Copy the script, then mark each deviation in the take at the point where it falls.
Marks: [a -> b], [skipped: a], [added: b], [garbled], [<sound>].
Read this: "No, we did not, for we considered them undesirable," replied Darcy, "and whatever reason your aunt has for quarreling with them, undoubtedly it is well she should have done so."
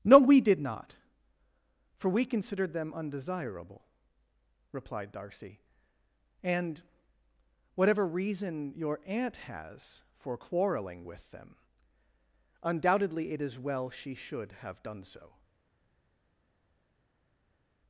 "No, we did not, for we considered them undesirable," replied Darcy, "and whatever reason your aunt has for quarreling with them, undoubtedly it is well she should have done so."